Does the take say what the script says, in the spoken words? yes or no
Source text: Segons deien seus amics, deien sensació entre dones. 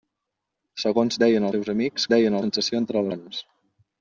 yes